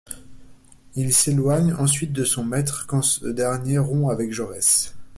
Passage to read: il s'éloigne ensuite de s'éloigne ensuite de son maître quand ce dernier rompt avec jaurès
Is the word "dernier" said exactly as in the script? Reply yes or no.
yes